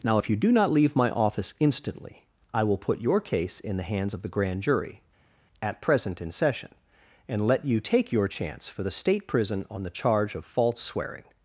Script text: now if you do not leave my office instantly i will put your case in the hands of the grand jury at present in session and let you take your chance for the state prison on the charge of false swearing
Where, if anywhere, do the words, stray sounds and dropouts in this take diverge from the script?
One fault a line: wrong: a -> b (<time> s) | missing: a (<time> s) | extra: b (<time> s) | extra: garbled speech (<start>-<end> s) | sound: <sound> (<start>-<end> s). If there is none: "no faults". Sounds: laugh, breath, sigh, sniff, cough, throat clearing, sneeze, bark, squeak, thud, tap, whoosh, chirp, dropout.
no faults